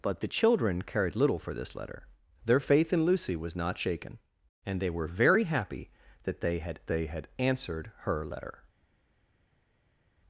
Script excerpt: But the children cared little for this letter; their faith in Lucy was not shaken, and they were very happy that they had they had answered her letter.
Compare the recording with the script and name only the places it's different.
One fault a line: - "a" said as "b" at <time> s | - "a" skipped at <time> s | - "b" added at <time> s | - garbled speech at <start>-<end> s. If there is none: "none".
none